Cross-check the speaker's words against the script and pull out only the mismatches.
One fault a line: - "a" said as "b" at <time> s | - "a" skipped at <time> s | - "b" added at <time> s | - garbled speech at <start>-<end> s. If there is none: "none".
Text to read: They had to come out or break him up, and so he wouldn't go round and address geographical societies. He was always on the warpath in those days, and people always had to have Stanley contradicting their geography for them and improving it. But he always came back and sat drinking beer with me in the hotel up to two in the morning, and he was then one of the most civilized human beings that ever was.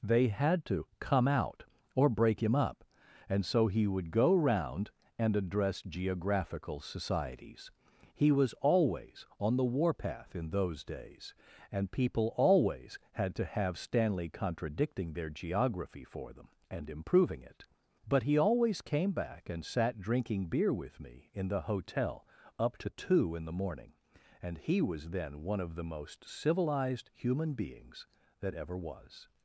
- "wouldn't" said as "would" at 3.9 s